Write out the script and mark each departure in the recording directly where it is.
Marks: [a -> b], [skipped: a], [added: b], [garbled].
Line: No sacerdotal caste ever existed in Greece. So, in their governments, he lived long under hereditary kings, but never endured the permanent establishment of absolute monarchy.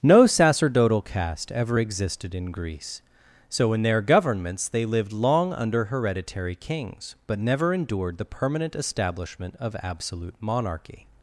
No sacerdotal caste ever existed in Greece. So, in their governments, [he -> they] lived long under hereditary kings, but never endured the permanent establishment of absolute monarchy.